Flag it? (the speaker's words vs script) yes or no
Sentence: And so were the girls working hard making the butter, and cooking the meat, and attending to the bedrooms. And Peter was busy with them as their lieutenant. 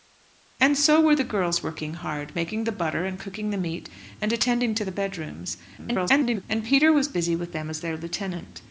yes